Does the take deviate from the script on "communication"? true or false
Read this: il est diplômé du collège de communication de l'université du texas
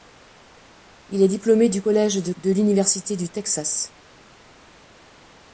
true